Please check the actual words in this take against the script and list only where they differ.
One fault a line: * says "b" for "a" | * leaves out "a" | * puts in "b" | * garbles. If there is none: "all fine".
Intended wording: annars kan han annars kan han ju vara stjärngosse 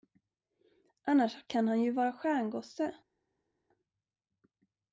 * leaves out "annars kan han"